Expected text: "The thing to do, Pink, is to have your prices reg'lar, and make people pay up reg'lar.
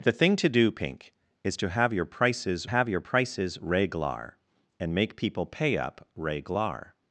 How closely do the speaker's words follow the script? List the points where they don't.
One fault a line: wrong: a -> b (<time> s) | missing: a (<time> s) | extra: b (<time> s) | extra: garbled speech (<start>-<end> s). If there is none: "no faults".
extra: have your prices (2.7 s)